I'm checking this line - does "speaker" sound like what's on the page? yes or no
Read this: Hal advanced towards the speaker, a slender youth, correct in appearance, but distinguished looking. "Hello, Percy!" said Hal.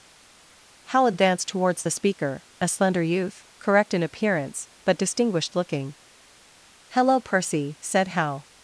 yes